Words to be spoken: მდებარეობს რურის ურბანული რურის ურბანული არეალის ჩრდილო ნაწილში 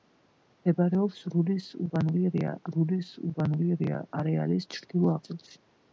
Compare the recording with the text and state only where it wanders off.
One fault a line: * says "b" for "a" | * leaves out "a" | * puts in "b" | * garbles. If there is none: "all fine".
all fine